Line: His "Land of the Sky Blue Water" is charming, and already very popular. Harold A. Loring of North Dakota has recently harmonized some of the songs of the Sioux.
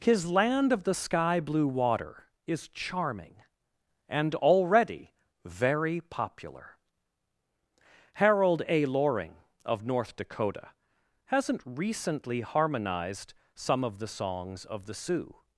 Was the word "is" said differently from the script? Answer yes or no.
no